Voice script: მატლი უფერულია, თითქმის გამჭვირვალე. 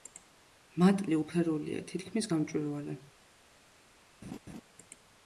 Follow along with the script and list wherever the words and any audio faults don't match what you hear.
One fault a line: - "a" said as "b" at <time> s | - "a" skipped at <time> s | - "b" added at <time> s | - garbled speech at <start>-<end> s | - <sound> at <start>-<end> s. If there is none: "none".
- laugh at 4.2-4.6 s